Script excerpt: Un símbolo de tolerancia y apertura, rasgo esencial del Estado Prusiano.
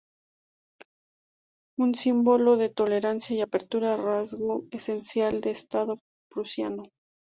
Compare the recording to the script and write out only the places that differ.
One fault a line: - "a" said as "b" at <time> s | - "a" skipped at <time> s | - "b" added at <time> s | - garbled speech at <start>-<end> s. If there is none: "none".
none